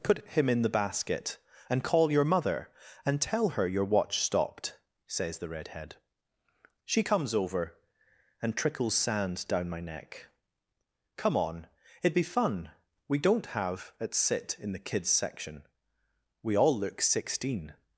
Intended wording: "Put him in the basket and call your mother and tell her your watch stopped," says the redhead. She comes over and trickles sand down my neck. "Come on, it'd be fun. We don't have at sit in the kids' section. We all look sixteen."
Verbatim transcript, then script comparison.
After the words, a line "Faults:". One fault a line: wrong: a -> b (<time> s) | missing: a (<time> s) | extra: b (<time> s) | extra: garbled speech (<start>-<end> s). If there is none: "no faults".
"Put him in the basket and call your mother and tell her your watch stopped," says the redhead. She comes over and trickles sand down my neck. "Come on, it'd be fun. We don't have at sit in the kids' section. We all look sixteen."
Faults:
no faults